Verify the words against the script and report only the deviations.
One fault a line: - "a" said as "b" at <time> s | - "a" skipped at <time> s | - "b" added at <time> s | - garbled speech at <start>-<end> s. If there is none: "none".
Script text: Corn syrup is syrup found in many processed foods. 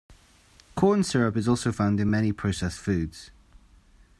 - "syrup" said as "also" at 1.5 s